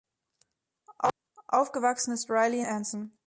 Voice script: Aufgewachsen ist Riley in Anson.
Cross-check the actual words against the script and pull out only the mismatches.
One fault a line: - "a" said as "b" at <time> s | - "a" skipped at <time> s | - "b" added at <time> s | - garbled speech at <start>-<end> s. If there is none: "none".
- "in" skipped at 2.6 s